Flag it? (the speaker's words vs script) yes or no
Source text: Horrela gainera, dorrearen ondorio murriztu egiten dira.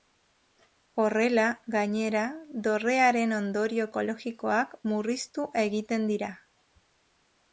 yes